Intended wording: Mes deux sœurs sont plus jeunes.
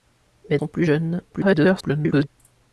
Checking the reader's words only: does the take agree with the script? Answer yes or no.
no